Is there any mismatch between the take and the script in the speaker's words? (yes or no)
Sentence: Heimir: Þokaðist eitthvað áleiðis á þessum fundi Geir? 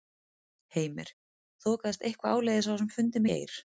no